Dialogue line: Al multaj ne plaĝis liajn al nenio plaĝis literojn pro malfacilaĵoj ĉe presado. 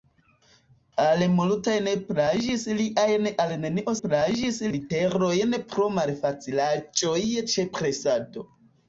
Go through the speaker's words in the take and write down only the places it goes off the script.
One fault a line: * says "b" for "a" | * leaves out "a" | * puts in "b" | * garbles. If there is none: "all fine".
all fine